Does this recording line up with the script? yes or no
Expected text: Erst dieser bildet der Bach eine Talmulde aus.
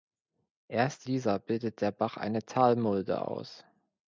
yes